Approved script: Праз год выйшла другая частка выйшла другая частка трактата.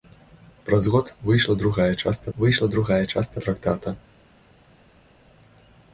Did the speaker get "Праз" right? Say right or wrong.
right